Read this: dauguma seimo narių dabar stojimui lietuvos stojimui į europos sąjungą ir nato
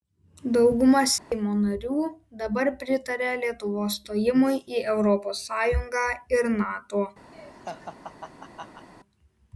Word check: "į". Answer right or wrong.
right